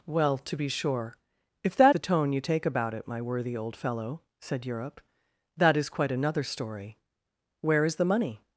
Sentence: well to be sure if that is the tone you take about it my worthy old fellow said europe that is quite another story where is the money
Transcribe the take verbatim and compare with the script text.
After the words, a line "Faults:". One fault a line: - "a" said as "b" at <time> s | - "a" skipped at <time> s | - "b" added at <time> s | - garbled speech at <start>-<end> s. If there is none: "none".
well to be sure if that the tone you take about it my worthy old fellow said europe that is quite another story where is the money
Faults:
- "is" skipped at 1.9 s